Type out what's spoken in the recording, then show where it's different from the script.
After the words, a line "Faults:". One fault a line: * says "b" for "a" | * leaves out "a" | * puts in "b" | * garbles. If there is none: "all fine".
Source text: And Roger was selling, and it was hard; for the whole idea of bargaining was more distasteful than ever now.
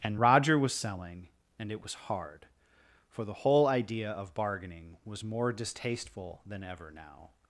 And Roger was selling, and it was hard; for the whole idea of bargaining was more distasteful than ever now.
Faults:
all fine